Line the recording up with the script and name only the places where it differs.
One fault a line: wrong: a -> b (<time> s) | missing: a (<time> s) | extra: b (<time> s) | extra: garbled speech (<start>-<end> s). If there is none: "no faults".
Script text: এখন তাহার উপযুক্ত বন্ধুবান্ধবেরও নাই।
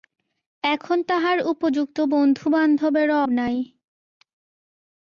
no faults